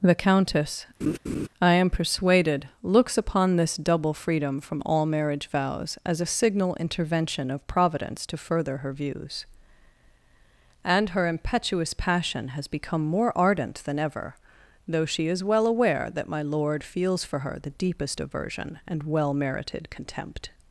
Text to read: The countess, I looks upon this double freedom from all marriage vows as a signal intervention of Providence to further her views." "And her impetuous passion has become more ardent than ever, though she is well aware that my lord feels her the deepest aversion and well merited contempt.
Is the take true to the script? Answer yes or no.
no